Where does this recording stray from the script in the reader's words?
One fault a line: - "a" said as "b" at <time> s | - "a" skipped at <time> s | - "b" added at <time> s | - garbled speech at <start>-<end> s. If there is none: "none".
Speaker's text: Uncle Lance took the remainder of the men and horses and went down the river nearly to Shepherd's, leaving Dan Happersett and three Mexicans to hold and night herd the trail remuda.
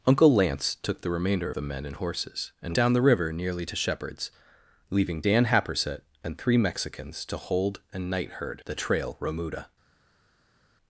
- "of" skipped at 1.5 s
- "went" skipped at 2.7 s